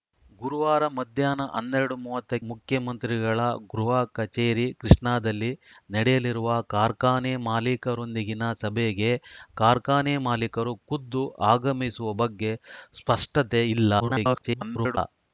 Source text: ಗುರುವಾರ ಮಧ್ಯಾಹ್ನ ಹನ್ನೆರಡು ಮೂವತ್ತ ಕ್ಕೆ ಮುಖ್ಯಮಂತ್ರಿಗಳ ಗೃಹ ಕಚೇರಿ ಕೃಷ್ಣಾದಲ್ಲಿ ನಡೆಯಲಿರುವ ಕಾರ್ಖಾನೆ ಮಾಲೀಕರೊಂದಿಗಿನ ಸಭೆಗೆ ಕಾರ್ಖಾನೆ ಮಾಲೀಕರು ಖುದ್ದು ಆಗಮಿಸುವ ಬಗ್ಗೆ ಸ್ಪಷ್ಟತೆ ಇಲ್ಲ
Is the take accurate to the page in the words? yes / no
no